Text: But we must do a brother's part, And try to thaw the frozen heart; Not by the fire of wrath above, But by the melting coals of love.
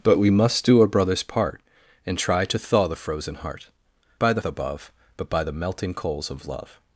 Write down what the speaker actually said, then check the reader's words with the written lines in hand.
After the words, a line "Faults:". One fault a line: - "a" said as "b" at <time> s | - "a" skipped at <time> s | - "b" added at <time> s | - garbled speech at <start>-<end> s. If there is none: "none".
But we must do a brother's part, And try to thaw the frozen heart; By the above, But by the melting coals of love.
Faults:
- "Not" skipped at 3.7 s
- "fire of wrath" skipped at 4.4 s